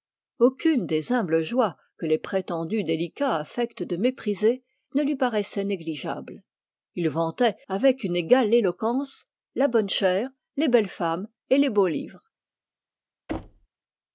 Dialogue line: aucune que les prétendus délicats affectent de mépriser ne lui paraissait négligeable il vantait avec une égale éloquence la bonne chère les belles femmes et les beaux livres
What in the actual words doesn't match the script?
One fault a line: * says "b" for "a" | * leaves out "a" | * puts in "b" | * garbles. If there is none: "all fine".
* puts in "des humbles joies"